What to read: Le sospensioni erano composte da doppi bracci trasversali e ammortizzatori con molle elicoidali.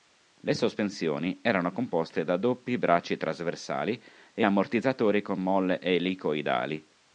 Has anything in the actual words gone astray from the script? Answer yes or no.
no